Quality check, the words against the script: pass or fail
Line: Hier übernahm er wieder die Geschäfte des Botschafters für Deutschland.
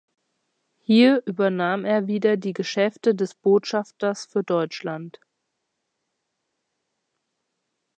pass